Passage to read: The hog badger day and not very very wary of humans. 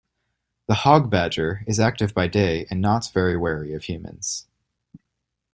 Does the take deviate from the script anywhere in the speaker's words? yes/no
yes